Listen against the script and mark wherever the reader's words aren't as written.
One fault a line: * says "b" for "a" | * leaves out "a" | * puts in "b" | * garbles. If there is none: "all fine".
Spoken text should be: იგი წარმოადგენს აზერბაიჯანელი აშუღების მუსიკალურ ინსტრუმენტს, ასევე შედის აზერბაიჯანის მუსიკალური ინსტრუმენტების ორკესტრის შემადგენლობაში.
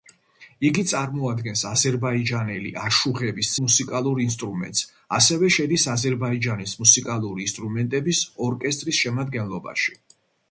all fine